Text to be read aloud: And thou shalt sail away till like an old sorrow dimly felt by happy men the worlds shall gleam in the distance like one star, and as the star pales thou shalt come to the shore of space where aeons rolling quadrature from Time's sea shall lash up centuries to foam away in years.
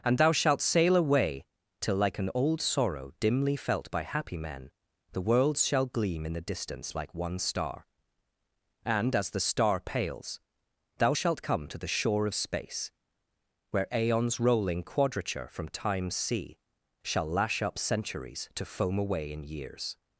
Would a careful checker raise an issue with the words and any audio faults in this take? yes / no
no